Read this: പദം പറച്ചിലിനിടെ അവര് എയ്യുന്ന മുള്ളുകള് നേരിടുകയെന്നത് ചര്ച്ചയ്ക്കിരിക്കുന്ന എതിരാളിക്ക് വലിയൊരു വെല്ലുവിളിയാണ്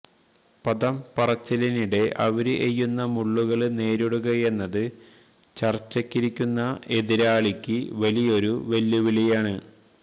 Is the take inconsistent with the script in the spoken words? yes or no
no